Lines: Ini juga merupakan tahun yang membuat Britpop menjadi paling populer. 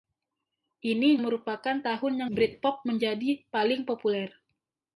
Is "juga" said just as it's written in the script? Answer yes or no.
no